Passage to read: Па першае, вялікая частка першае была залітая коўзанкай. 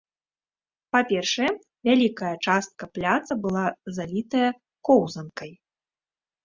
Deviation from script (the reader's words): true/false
true